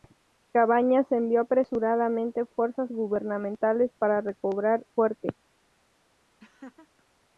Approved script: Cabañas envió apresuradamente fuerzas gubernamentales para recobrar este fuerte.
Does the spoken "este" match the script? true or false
false